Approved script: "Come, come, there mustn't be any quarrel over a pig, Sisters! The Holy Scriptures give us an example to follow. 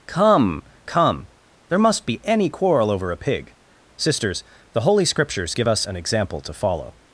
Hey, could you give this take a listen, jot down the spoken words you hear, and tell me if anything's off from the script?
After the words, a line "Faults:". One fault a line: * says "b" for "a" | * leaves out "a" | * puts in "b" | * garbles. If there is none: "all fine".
"Come, come, there must be any quarrel over a pig, Sisters! The Holy Scriptures give us an example to follow.
Faults:
* says "must" for "mustn't"